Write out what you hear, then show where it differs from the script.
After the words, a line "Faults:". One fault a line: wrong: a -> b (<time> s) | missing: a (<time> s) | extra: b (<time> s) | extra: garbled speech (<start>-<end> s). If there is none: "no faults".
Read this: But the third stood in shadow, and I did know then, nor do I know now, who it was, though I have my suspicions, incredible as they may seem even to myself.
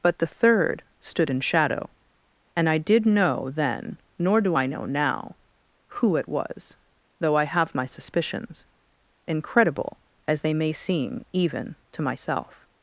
But the third stood in shadow, and I did know then, nor do I know now, who it was, though I have my suspicions, incredible as they may seem even to myself.
Faults:
no faults